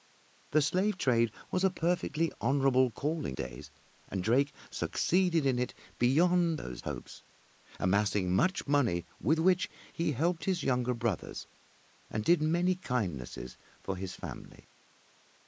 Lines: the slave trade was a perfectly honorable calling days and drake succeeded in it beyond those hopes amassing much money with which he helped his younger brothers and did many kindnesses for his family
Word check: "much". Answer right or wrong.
right